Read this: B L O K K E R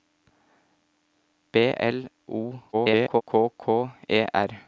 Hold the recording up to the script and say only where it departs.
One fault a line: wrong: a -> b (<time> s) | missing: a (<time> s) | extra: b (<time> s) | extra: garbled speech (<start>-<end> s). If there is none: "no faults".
extra: garbled speech (2.7-3.2 s)